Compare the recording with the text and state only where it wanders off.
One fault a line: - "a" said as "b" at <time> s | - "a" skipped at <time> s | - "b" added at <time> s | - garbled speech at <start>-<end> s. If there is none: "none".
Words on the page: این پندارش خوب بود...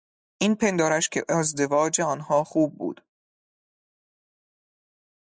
- "که ازدواج آنها" added at 1.1 s